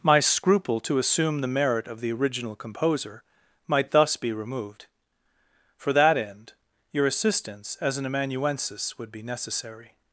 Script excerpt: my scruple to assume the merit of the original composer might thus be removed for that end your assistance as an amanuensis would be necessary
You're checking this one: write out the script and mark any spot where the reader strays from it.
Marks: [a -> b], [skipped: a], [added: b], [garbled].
my scruple to assume the merit of the original composer might thus be removed for that end your assistance as an amanuensis would be necessary